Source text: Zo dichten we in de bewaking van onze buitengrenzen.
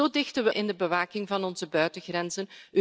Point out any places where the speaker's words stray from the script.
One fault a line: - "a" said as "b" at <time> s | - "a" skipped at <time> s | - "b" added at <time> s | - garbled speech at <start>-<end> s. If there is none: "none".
none